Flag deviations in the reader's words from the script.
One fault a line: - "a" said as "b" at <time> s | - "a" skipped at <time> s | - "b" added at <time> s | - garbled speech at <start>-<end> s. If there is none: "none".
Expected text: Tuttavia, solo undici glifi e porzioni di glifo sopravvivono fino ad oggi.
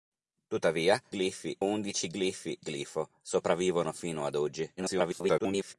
- "solo" said as "glifi" at 1.1 s
- "e porzioni di" skipped at 2.6 s
- garbled speech at 4.8-5.7 s